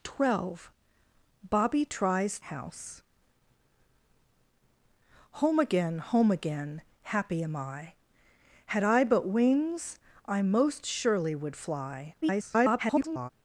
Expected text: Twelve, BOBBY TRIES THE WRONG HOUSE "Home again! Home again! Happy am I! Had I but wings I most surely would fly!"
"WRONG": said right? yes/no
no